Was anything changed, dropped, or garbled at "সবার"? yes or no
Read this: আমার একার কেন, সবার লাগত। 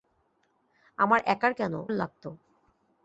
yes